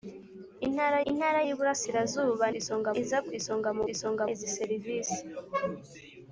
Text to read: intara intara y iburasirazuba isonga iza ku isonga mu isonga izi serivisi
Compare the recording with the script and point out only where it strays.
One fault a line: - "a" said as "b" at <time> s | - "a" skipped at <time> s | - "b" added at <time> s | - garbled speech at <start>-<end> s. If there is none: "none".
none